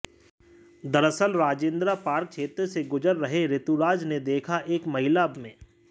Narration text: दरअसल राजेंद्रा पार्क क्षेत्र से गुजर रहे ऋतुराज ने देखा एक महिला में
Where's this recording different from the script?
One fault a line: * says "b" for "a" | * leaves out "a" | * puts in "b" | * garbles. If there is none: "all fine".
all fine